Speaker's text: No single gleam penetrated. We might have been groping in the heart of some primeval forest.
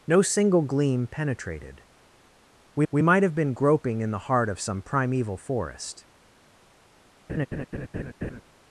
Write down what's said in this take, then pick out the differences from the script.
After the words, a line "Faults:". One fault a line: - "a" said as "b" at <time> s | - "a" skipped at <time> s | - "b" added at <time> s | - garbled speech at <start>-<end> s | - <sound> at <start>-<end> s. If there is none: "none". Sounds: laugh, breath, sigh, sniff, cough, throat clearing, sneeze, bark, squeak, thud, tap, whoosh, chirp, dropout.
No single gleam penetrated. We we might have been groping in the heart of some primeval forest.
Faults:
- "we" added at 2.9 s
- laugh at 7.3-8.4 s